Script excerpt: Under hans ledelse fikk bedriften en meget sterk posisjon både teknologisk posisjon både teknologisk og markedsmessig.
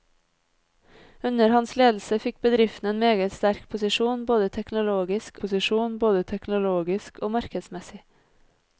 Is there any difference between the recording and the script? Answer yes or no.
no